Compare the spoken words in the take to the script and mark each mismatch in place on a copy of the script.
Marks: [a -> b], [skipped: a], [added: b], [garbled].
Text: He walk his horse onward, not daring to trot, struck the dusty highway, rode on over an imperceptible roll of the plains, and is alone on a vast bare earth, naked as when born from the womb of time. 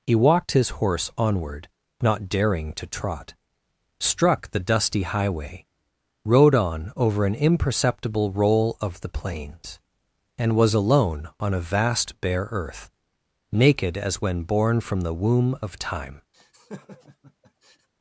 He [walk -> walked] his horse onward, not daring to trot, struck the dusty highway, rode on over an imperceptible roll of the plains, and [is -> was] alone on a vast bare earth, naked as when born from the womb of time.